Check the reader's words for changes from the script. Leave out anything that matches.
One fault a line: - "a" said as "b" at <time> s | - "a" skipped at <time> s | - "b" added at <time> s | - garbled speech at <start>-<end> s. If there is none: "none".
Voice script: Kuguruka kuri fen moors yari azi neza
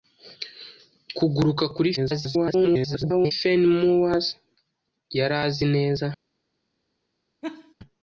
- garbled speech at 2.0-3.3 s